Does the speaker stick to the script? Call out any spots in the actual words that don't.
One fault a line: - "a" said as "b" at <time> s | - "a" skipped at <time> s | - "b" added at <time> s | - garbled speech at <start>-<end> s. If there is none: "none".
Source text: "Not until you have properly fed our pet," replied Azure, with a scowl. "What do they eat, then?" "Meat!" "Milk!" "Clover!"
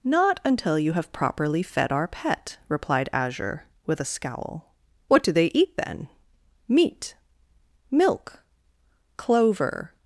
none